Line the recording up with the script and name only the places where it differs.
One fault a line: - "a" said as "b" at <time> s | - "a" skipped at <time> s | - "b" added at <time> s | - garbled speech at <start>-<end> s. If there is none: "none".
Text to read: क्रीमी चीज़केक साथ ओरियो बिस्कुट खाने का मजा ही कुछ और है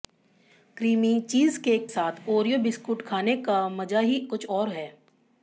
none